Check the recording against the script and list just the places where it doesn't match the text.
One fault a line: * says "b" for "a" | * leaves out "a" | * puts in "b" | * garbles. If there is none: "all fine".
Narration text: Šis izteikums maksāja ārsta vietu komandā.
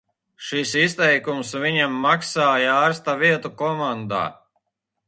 * puts in "viņam"